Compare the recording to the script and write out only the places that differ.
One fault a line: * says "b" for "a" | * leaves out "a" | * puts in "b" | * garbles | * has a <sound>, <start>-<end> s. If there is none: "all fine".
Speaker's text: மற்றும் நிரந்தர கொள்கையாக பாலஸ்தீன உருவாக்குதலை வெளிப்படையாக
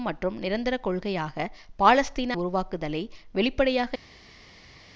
all fine